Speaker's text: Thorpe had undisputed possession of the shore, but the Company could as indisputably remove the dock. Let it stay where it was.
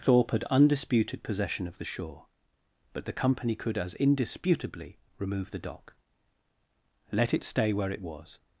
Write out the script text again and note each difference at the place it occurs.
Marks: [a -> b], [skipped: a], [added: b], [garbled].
Thorpe had undisputed possession of the shore, but the Company could as indisputably remove the dock. Let it stay where it was.